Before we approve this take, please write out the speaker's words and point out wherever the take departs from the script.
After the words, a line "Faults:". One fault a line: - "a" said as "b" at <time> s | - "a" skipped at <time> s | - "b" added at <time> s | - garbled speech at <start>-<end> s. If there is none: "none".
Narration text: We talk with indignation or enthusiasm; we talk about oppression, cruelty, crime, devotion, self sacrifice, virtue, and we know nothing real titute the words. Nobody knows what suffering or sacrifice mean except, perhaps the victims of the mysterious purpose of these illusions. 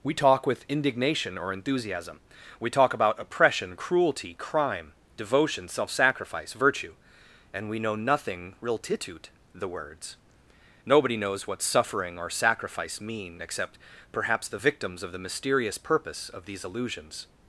We talk with indignation or enthusiasm; we talk about oppression, cruelty, crime, devotion, self sacrifice, virtue, and we know nothing real titute the words. Nobody knows what suffering or sacrifice mean except, perhaps the victims of the mysterious purpose of these illusions.
Faults:
none